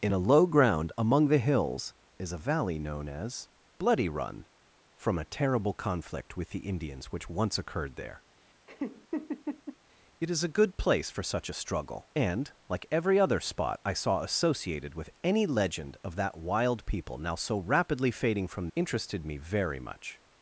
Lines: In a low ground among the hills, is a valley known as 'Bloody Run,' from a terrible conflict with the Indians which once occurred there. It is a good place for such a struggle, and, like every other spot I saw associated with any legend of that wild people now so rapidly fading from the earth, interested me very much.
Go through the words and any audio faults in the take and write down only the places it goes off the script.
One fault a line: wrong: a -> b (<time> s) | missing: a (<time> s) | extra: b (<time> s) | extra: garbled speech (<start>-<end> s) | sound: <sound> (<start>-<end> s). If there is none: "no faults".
sound: laugh (8.7-9.8 s)
missing: the earth (18.7 s)